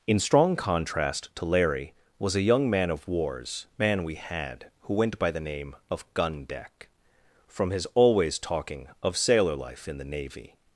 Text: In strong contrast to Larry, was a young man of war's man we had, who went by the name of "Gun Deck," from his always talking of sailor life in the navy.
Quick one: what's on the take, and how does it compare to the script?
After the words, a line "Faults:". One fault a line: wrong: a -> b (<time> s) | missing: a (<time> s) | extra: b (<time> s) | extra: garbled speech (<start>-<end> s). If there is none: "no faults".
In strong contrast to Larry, was a young man of war's man we had, who went by the name of "Gun Deck," from his always talking of sailor life in the navy.
Faults:
no faults